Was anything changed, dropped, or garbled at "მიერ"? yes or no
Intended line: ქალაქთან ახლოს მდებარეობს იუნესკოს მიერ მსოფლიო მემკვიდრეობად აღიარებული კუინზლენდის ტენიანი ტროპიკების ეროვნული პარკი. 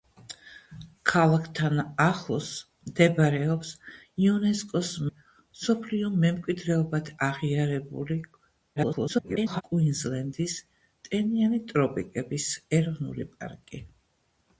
yes